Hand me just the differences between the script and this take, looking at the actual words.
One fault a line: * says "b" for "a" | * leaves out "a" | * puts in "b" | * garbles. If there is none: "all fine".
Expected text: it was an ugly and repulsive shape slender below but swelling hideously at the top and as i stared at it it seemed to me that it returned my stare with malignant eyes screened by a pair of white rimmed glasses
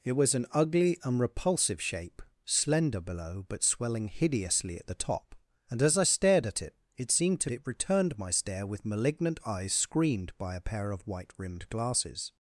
* leaves out "me that"